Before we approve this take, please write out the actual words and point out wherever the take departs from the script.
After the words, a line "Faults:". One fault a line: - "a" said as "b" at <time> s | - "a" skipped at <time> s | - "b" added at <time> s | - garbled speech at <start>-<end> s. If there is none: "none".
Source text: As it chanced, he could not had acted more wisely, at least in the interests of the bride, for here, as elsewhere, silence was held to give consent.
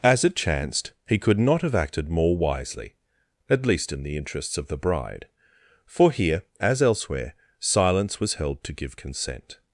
As it chanced, he could not have acted more wisely, at least in the interests of the bride, for here, as elsewhere, silence was held to give consent.
Faults:
- "had" said as "have" at 1.6 s